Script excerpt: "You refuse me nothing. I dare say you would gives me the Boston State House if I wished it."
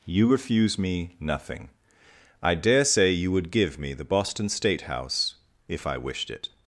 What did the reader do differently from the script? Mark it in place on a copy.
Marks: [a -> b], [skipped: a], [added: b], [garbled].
"You refuse me nothing. I dare say you would [gives -> give] me the Boston State House if I wished it."